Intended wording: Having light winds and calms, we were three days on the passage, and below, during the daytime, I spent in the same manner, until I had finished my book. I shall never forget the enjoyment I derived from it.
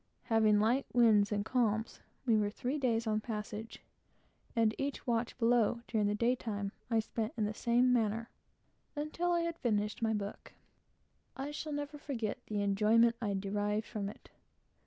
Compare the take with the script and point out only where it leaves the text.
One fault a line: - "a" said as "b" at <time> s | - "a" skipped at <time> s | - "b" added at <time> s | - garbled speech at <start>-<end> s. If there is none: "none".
- "each watch" added at 4.8 s